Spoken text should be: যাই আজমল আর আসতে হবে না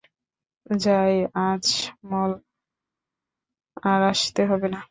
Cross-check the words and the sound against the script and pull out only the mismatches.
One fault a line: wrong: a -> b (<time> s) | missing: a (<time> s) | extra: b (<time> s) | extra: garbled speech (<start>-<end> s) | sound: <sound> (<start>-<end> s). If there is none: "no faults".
no faults